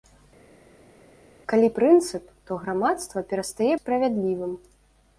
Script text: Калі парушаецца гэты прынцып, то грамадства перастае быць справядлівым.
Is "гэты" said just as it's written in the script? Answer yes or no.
no